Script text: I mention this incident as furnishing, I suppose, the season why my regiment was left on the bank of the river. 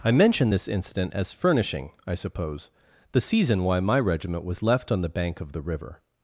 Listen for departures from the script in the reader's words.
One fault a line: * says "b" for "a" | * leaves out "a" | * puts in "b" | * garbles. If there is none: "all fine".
all fine